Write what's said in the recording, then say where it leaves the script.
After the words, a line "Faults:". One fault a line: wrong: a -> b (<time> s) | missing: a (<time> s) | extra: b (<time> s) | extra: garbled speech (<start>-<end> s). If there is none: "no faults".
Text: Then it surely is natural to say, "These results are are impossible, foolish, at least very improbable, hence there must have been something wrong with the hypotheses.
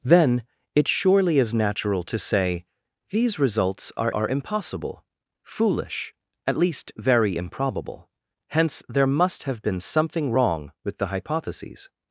Then it surely is natural to say, "These results are are impossible, foolish, at least very improbable, hence there must have been something wrong with the hypotheses.
Faults:
no faults